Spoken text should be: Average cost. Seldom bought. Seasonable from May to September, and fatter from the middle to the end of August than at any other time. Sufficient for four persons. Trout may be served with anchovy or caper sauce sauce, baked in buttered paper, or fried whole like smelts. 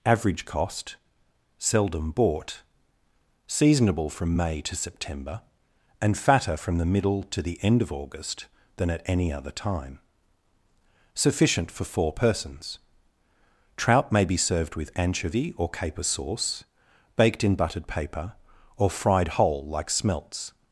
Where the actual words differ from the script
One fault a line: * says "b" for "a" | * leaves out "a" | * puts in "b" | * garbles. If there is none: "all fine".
* leaves out "sauce"